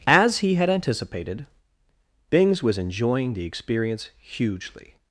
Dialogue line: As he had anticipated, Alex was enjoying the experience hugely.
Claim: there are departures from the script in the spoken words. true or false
true